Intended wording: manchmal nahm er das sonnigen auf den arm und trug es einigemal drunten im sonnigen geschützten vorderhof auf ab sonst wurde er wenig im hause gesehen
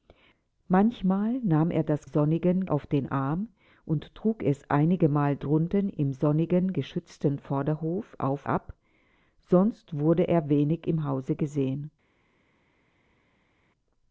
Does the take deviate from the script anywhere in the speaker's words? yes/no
no